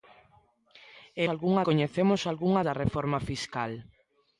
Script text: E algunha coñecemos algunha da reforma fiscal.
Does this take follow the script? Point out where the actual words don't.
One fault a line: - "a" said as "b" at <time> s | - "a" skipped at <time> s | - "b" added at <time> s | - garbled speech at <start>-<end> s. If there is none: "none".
none